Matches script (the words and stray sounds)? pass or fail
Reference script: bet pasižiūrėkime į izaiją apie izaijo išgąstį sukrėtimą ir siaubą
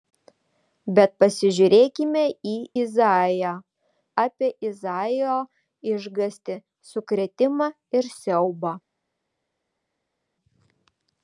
pass